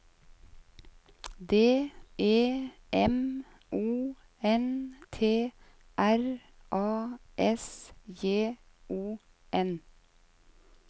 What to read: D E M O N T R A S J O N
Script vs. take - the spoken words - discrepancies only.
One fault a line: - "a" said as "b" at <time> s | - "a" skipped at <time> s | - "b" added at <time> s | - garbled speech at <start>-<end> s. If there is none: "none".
none